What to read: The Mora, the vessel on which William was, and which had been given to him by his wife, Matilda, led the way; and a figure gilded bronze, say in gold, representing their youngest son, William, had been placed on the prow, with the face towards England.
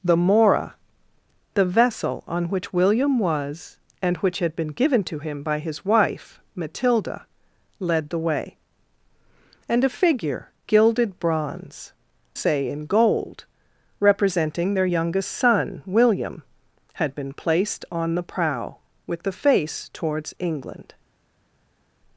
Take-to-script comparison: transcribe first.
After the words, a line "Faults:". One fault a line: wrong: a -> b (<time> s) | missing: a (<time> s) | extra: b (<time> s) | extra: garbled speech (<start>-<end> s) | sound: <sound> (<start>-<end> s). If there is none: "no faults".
The Mora, the vessel on which William was, and which had been given to him by his wife, Matilda, led the way; and a figure gilded bronze, say in gold, representing their youngest son, William, had been placed on the prow, with the face towards England.
Faults:
no faults